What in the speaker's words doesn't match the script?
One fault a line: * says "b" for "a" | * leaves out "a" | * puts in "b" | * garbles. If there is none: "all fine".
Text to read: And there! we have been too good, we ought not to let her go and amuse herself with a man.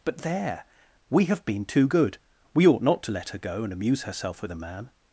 * says "But" for "And"